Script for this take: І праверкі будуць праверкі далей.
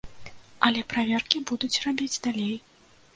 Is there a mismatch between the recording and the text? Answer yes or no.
yes